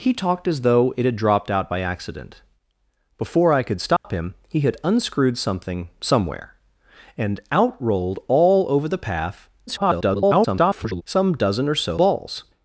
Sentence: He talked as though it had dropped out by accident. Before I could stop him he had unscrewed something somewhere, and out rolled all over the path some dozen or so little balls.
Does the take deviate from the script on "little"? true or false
true